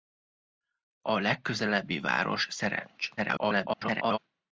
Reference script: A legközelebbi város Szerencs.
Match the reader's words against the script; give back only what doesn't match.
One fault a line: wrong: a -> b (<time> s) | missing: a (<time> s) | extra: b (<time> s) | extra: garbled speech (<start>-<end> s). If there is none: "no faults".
extra: garbled speech (3.2-4.2 s)